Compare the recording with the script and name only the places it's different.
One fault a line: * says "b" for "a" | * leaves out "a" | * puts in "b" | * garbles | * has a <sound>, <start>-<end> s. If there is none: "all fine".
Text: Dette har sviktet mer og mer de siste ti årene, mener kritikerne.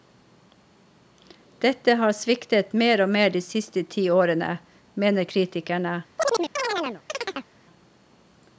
* has a chirp, 6.2-7.5 s